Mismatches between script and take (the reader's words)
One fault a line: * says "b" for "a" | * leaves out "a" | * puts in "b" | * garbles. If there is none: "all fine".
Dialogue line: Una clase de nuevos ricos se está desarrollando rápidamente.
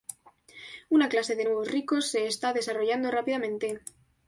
all fine